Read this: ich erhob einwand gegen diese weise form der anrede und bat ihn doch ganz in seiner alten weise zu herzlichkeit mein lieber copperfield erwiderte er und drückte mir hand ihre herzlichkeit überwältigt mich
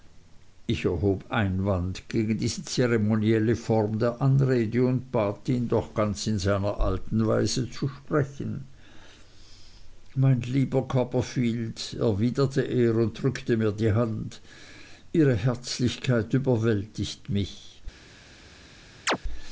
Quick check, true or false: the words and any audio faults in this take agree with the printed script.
false